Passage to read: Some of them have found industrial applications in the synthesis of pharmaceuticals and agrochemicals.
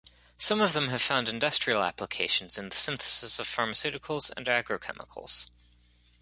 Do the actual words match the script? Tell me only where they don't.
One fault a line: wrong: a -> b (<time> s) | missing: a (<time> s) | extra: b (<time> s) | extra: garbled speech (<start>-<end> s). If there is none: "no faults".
no faults